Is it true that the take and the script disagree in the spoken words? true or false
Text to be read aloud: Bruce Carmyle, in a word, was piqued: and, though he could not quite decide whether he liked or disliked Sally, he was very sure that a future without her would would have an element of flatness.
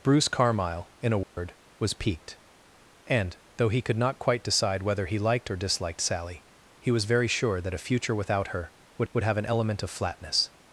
false